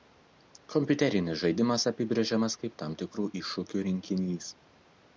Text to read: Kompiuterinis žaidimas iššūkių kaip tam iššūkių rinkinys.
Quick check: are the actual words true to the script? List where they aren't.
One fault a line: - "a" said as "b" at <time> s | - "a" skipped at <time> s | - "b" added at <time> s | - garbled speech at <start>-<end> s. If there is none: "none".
- "iššūkių" said as "apibrėžiamas" at 1.9 s
- "tikrų" added at 3.0 s